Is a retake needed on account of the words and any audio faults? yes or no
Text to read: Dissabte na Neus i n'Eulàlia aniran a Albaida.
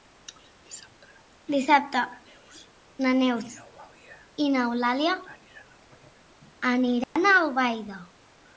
yes